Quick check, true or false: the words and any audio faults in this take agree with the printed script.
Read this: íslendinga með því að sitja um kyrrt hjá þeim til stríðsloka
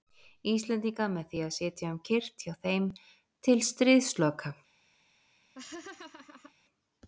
false